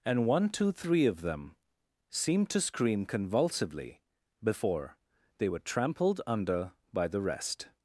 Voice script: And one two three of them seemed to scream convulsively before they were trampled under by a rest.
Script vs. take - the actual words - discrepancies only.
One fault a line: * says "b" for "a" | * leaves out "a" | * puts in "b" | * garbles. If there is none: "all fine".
* says "the" for "a"